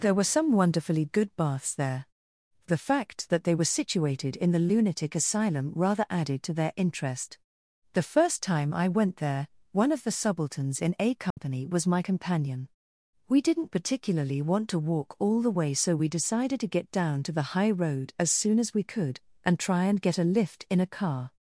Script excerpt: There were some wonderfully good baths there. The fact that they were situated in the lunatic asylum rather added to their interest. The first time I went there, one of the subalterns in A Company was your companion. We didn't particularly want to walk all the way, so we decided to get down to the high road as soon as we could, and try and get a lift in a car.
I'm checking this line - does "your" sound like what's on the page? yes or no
no